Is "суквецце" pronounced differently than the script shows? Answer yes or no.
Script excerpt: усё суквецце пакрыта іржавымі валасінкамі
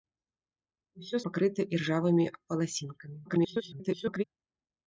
yes